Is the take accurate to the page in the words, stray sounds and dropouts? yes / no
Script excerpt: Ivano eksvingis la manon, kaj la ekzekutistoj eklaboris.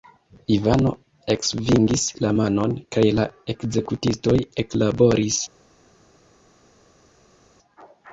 yes